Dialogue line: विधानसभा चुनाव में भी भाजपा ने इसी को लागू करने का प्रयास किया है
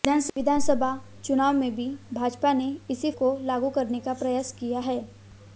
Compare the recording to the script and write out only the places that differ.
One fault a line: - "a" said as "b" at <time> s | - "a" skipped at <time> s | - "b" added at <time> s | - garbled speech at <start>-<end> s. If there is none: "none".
none